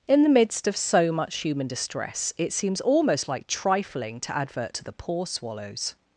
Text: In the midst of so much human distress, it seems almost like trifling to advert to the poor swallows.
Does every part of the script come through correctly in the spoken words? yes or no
yes